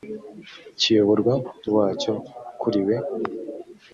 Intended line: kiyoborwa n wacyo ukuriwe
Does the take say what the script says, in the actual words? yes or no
yes